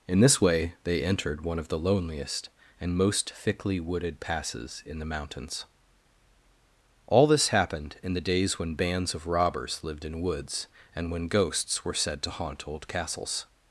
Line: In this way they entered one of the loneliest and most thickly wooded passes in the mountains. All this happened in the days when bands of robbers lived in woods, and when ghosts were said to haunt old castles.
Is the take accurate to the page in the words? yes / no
yes